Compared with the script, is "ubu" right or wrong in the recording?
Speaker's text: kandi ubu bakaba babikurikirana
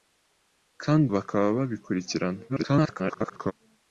wrong